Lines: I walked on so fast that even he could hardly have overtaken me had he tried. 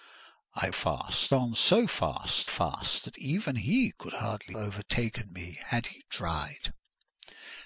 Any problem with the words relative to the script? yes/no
yes